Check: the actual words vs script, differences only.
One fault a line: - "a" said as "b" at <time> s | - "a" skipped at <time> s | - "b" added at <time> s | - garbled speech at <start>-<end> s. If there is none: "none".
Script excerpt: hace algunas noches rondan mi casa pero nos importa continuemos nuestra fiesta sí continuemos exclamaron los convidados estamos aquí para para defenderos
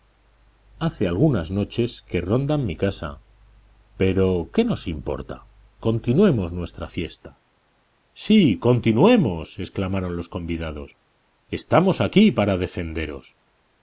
- "que" added at 2.1 s
- "qué" added at 4.5 s
- "para" skipped at 12.6 s